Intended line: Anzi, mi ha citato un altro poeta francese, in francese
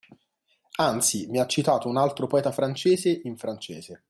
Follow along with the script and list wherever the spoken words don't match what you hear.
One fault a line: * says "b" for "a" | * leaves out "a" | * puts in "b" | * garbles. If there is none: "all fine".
all fine